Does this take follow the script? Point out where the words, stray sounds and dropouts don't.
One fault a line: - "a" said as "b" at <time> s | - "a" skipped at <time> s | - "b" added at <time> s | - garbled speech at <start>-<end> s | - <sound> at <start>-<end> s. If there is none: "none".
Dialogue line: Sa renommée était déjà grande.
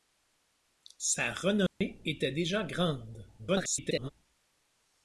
- dropout at 1.7-1.8 s
- garbled speech at 3.4-4.1 s